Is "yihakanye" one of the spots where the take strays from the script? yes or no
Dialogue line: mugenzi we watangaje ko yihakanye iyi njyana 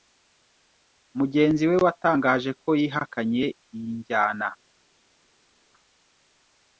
no